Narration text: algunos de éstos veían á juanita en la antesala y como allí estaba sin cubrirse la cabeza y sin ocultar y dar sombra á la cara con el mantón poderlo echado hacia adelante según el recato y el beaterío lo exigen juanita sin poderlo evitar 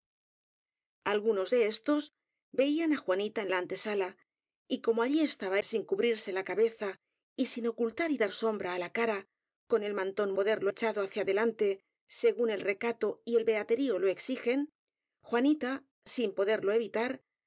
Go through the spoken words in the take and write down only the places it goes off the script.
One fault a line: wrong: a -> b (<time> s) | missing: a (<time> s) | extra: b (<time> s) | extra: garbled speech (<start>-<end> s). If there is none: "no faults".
no faults